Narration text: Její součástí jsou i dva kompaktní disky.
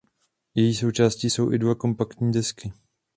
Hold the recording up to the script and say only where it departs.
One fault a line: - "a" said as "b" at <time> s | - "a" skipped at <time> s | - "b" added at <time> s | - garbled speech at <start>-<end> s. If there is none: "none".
none